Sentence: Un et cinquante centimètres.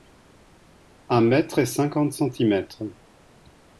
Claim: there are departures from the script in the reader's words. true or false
true